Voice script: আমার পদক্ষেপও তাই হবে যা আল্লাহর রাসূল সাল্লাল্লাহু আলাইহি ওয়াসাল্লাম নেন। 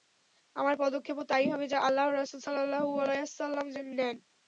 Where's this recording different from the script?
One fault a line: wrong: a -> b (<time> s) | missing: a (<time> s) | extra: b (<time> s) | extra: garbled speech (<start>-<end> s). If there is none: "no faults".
no faults